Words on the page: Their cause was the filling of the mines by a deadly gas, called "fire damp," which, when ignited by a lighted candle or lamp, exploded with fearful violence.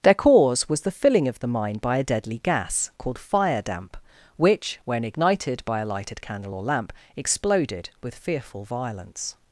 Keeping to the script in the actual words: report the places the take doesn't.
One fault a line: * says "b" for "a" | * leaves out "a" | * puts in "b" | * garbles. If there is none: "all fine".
* says "mine" for "mines"